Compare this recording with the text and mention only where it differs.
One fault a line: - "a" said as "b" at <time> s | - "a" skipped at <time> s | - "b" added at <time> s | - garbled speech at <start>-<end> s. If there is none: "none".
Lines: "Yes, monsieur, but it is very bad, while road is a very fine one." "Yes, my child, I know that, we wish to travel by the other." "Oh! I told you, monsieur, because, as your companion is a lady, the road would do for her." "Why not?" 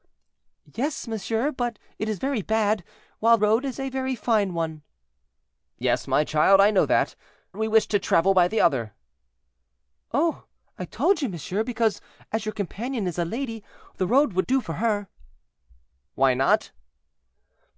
none